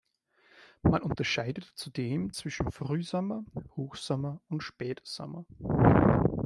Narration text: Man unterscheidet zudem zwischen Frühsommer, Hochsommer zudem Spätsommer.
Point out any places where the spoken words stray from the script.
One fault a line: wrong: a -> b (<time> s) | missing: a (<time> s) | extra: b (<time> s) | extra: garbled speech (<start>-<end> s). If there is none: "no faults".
wrong: zudem -> und (4.5 s)